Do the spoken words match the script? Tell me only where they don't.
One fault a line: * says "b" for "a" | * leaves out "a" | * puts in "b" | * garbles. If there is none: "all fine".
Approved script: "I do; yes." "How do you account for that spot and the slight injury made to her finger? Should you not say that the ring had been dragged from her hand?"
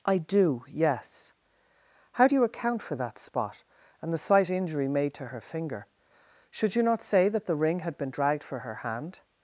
* says "for" for "from"